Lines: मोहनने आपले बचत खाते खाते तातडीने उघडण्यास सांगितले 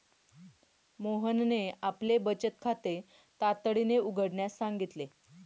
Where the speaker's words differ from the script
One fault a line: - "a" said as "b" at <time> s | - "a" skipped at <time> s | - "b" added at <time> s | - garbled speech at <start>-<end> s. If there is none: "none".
- "खाते" skipped at 3.0 s